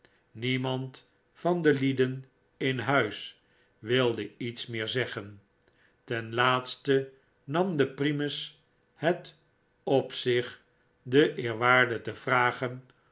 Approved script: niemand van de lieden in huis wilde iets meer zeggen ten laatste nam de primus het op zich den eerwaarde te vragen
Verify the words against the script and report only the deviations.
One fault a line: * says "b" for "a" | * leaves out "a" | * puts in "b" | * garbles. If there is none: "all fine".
all fine